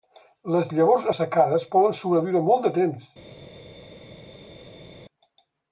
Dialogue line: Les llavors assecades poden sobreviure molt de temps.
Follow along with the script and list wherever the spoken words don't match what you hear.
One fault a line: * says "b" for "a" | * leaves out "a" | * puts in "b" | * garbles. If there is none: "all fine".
all fine